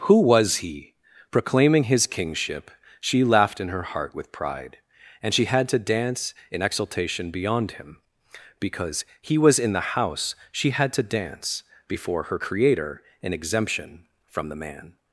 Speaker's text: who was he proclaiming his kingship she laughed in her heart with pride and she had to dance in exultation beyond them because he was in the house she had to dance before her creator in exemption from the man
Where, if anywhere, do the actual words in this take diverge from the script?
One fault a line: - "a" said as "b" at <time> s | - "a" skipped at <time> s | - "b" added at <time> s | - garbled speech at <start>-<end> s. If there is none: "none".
- "them" said as "him" at 7.7 s